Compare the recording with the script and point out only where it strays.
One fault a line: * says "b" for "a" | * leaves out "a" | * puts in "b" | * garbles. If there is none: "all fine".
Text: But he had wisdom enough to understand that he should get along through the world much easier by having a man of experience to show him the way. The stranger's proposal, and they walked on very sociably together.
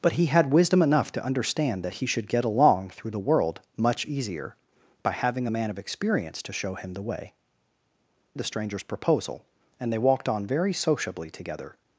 all fine